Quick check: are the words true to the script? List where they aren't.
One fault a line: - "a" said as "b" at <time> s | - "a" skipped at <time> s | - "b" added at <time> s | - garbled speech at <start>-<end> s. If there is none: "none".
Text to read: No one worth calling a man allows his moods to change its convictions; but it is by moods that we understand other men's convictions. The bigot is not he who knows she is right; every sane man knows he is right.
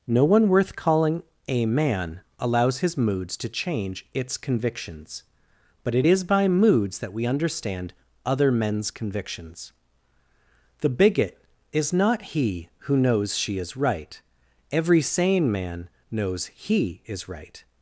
none